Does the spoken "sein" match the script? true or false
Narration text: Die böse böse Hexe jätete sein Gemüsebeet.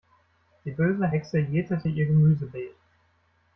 false